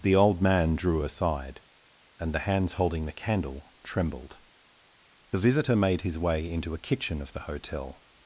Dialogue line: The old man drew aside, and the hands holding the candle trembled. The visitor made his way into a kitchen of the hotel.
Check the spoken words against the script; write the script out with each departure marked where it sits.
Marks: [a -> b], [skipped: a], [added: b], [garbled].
The old man drew aside, and the hands holding the candle trembled. The visitor made his way into a kitchen of the hotel.